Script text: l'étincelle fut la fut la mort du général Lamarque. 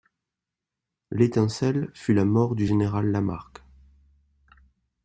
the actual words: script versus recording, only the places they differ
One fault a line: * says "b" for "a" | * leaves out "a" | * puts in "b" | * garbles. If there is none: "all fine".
* leaves out "fut la"